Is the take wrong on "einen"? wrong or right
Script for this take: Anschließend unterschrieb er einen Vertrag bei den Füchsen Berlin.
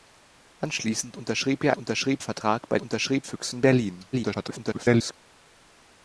wrong